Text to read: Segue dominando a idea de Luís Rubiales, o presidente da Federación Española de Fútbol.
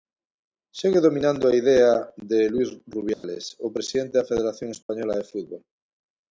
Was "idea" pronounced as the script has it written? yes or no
yes